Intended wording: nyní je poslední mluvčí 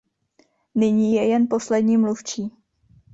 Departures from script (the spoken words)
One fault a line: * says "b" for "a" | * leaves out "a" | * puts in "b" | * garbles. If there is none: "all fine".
* puts in "jen"